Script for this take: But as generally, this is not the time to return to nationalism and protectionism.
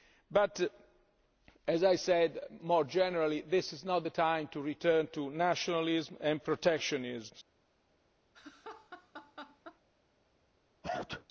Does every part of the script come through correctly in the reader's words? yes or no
no